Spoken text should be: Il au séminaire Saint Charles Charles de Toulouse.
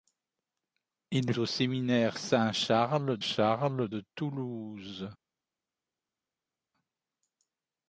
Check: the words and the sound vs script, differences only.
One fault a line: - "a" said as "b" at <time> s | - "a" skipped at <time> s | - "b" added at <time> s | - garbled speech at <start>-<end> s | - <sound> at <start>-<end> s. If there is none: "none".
none